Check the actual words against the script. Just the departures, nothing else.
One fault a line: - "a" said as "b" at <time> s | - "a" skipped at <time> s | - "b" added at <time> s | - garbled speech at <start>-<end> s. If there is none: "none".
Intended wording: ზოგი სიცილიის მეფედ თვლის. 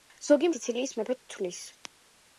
none